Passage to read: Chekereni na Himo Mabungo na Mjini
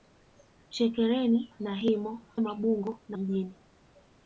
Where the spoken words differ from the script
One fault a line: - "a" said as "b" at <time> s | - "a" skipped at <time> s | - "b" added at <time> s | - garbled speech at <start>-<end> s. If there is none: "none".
none